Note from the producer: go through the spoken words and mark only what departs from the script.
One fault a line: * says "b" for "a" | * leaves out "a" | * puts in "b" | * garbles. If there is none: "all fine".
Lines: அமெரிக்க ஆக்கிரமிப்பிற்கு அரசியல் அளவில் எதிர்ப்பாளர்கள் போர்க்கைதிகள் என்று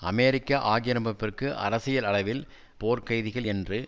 * leaves out "எதிர்ப்பாளர்கள்"